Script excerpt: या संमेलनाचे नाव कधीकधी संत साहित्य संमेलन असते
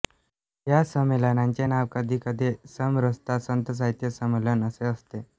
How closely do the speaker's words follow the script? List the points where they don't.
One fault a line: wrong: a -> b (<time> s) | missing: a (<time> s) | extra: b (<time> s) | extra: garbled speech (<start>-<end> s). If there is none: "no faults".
extra: समरसता (2.7 s)
extra: असे (4.6 s)